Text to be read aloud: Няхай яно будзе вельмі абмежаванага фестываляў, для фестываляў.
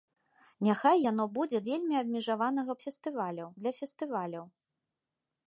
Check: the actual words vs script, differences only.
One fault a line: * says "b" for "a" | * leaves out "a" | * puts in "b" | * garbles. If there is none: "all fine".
all fine